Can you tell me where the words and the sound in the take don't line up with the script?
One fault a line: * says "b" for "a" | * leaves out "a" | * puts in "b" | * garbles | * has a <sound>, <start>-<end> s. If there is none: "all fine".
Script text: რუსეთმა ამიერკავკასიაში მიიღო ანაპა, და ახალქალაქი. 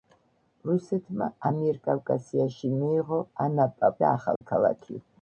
* has a dropout, 4.4-4.4 s